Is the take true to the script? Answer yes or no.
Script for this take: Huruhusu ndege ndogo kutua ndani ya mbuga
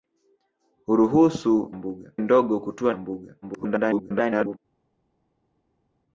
no